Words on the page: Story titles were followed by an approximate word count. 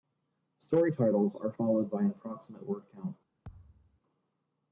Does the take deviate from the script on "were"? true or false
true